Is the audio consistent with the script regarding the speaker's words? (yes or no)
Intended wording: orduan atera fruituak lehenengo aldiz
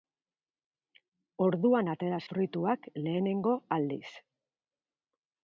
yes